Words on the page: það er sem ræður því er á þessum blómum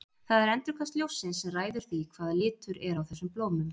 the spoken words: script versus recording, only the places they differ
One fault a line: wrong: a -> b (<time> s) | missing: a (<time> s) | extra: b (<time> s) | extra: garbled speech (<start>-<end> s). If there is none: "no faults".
extra: endurkast ljóssins (0.5 s)
extra: hvaða litur (2.2 s)